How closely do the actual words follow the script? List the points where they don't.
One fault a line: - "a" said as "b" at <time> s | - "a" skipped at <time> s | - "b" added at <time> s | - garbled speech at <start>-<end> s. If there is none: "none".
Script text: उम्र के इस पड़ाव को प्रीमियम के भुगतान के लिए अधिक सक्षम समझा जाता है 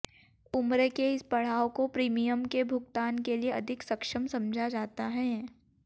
none